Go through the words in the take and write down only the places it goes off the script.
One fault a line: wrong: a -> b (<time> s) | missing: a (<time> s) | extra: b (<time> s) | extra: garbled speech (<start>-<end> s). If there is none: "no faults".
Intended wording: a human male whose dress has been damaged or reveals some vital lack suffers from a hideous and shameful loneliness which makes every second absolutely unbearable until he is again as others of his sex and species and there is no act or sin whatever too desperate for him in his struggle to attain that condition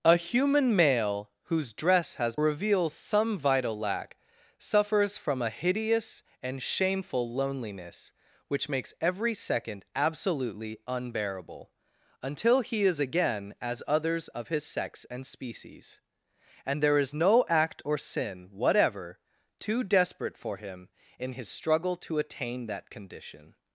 missing: been damaged or (2.4 s)